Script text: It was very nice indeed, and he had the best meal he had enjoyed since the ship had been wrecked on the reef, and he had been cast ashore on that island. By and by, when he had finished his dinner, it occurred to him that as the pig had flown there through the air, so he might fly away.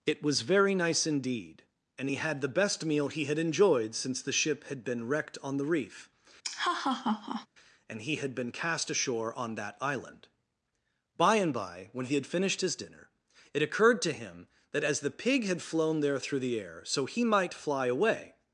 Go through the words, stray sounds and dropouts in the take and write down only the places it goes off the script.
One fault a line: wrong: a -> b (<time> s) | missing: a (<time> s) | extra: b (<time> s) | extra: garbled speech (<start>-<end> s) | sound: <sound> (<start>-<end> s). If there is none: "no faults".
sound: laugh (6.4-7.5 s)